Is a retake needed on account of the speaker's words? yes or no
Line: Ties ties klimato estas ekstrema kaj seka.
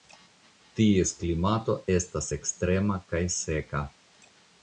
yes